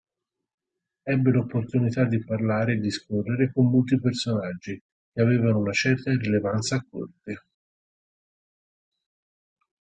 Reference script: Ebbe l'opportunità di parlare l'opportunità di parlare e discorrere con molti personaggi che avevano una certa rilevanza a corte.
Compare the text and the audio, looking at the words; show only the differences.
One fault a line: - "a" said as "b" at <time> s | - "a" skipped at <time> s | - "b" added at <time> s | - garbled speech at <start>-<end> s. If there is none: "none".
- "l'opportunità di parlare" skipped at 2.7 s